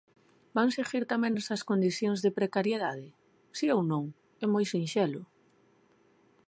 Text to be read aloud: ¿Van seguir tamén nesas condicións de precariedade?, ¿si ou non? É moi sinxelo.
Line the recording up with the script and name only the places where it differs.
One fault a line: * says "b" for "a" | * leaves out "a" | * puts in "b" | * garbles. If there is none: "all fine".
all fine